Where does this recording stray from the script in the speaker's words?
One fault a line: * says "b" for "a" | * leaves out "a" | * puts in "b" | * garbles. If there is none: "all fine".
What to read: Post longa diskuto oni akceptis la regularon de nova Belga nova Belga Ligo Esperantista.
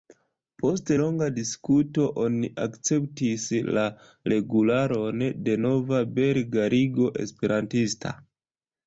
* leaves out "nova Belga"